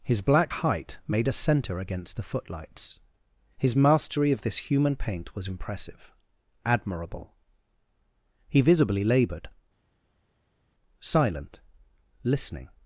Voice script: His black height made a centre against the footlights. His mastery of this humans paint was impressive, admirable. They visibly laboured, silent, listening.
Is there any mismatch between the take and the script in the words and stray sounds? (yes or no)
yes